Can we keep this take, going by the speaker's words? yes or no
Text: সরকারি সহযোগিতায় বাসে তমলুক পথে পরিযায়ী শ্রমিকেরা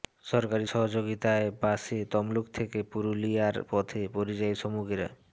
no